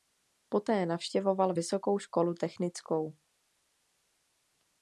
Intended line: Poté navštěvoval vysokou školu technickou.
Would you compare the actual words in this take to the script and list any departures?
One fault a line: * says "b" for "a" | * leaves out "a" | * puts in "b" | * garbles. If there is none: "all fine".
all fine